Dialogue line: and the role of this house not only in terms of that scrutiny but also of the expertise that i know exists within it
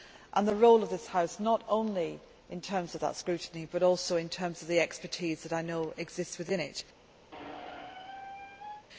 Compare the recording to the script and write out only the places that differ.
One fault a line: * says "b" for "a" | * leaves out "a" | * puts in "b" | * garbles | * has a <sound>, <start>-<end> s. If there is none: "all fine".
* puts in "in terms"
* has a squeak, 7.3-8.9 s